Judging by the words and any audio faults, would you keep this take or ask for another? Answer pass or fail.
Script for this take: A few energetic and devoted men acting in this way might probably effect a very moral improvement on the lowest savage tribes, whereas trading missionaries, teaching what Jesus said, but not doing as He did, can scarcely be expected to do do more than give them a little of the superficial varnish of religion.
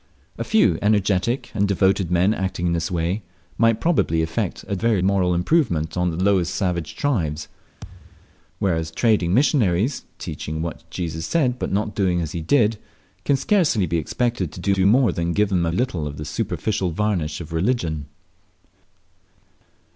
fail